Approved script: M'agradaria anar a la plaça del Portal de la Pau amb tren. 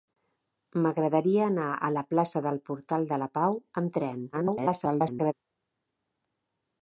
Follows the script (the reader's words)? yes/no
no